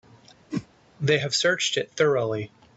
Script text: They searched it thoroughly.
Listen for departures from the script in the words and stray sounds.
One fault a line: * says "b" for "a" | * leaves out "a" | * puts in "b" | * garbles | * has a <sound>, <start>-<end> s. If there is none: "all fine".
* has a whoosh, 0.5-0.7 s
* puts in "have"